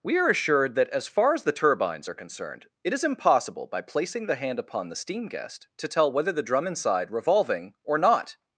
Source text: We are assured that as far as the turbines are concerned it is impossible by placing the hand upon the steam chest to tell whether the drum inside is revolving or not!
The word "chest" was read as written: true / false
false